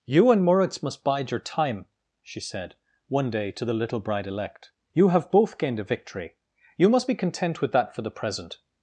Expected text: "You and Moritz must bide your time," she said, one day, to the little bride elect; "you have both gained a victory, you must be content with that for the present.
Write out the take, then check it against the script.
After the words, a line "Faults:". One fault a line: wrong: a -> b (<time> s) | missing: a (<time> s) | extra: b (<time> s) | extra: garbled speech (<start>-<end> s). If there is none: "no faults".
"You and Moritz must bide your time," she said, one day, to the little bride elect; "you have both gained a victory, you must be content with that for the present.
Faults:
no faults